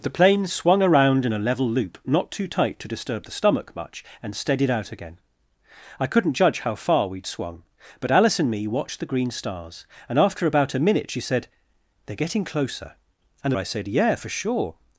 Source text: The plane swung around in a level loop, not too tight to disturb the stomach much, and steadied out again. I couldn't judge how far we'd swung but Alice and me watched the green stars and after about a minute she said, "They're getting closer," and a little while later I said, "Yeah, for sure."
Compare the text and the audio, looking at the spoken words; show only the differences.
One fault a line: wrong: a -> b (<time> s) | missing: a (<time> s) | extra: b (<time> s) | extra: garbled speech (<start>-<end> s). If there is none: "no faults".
missing: little while later (13.6 s)